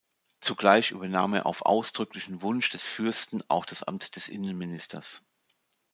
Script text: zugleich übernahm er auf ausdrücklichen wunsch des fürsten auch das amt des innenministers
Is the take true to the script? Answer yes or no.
yes